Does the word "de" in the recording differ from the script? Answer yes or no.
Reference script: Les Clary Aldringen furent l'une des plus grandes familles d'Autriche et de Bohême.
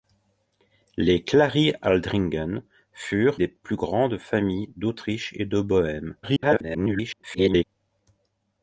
no